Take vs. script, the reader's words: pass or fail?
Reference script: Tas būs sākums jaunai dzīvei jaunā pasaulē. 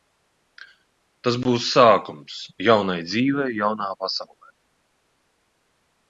pass